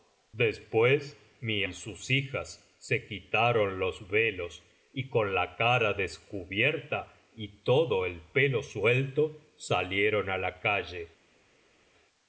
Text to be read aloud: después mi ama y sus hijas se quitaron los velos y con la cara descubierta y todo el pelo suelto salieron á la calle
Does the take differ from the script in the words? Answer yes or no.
yes